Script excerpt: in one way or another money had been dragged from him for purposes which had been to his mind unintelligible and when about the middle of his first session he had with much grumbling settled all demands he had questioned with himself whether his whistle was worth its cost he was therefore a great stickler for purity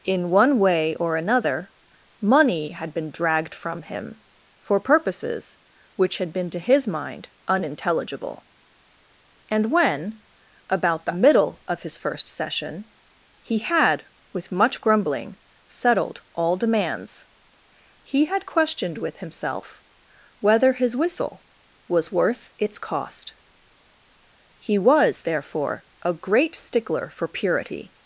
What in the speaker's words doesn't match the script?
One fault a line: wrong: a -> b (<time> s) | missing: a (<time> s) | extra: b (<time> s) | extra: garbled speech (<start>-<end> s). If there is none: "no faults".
no faults